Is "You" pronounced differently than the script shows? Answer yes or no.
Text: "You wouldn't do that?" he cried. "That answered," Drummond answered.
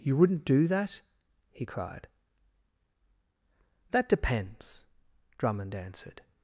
no